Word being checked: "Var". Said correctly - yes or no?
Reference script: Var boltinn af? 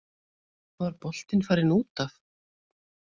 yes